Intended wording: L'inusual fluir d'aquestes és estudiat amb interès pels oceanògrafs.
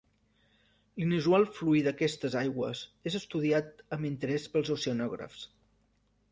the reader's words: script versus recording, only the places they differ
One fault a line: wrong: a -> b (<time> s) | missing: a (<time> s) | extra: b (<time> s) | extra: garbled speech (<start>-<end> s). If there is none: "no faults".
extra: aigües (2.4 s)